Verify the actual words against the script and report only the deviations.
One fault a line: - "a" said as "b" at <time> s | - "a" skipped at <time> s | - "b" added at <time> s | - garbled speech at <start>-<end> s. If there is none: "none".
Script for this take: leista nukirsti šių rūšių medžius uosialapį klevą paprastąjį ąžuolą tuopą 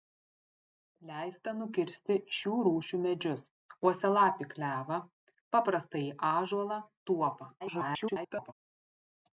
- garbled speech at 7.6-8.5 s